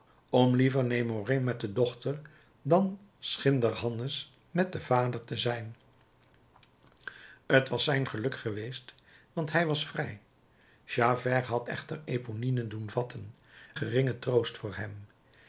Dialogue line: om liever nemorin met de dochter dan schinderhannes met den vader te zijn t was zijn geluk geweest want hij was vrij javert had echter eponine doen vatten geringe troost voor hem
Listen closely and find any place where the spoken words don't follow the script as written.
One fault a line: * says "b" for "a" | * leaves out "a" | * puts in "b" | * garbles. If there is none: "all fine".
all fine